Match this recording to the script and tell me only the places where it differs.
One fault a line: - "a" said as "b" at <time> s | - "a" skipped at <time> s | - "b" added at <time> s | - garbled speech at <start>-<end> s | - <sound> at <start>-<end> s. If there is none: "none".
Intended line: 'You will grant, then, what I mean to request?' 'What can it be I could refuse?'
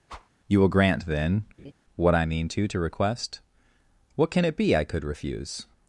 - whoosh at 0.1-0.3 s
- laugh at 1.6-1.7 s
- "to" added at 2.7 s